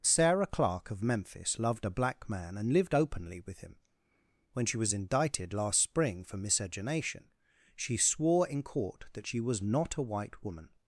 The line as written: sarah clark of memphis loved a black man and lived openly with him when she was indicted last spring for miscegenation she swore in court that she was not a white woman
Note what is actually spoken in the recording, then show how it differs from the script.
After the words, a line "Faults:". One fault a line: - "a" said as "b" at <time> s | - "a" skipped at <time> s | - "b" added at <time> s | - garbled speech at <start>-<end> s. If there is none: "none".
sarah clark of memphis loved a black man and lived openly with him when she was indicted last spring for miscegenation she swore in court that she was not a white woman
Faults:
none